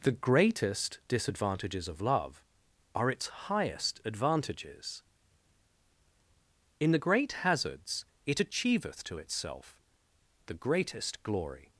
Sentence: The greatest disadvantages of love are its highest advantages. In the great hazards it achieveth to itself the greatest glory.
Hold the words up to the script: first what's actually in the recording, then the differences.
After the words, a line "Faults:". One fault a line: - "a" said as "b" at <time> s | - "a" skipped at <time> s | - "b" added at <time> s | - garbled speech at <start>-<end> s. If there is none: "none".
The greatest disadvantages of love are its highest advantages. In the great hazards it achieveth to itself the greatest glory.
Faults:
none